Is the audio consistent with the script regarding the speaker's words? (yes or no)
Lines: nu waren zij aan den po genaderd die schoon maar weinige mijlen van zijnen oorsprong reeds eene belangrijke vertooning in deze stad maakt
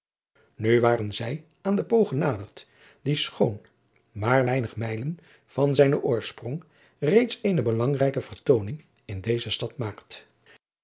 yes